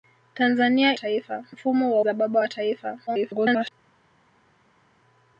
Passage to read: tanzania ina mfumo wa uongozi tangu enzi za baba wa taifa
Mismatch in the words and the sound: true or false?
true